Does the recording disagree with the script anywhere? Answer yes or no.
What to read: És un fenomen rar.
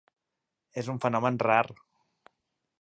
no